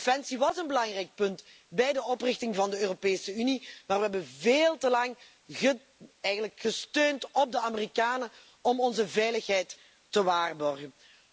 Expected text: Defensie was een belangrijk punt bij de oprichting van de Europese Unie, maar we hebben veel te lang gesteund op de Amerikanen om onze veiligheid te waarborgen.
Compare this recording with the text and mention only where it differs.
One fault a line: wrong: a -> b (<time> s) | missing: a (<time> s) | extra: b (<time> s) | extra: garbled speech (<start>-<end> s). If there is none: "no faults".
no faults